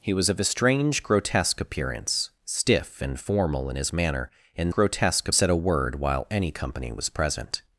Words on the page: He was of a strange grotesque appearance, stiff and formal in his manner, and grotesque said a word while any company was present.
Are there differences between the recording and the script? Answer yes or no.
no